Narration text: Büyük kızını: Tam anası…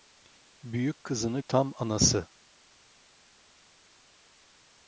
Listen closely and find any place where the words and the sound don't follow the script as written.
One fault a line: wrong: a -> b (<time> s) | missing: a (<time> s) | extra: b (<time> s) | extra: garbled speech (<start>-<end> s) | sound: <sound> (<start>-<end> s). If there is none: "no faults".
no faults